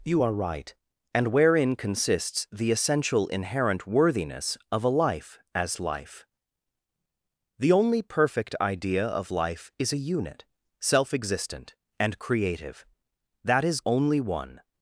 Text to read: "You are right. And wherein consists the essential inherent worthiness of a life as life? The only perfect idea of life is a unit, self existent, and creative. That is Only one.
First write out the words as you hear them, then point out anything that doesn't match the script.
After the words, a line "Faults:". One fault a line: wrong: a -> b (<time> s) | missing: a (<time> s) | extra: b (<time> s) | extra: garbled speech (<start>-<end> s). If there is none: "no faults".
"You are right. And wherein consists the essential inherent worthiness of a life as life? The only perfect idea of life is a unit, self existent, and creative. That is Only one.
Faults:
no faults